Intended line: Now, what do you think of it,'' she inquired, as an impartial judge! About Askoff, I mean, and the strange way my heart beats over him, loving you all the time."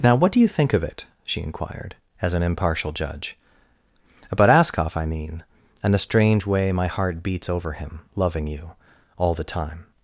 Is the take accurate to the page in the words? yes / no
yes